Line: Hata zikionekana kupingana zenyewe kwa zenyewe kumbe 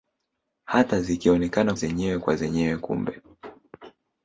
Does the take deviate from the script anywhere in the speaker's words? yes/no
yes